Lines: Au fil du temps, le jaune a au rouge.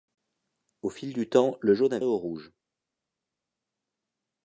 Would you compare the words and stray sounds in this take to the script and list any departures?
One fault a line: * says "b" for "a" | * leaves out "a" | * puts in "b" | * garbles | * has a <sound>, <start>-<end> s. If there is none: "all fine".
all fine